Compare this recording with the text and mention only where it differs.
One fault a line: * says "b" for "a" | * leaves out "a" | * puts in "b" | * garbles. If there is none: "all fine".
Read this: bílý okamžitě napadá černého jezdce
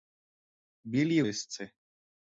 * leaves out "okamžitě napadá černého"